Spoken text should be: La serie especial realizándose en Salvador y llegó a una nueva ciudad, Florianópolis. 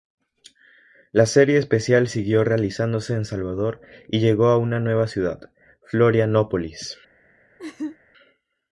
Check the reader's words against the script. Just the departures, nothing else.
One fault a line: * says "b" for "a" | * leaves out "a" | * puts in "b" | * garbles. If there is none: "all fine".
* puts in "siguió"